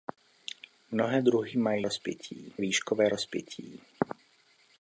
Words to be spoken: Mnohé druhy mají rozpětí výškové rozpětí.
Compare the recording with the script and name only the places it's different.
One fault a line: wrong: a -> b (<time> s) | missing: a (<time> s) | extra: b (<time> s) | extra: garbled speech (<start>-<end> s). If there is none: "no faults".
no faults